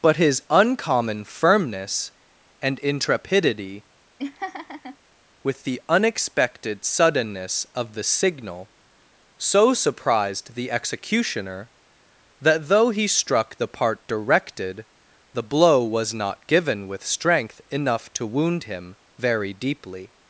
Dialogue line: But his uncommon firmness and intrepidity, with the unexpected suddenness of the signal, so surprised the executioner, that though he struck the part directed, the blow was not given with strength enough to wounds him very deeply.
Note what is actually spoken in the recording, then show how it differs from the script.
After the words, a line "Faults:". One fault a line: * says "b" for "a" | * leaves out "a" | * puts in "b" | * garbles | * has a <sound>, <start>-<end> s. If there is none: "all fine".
But his uncommon firmness and intrepidity, with the unexpected suddenness of the signal, so surprised the executioner, that though he struck the part directed, the blow was not given with strength enough to wound him very deeply.
Faults:
* has a laugh, 4.2-5.0 s
* says "wound" for "wounds"